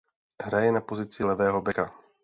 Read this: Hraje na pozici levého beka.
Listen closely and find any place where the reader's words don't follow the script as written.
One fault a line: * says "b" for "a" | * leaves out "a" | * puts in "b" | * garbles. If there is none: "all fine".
all fine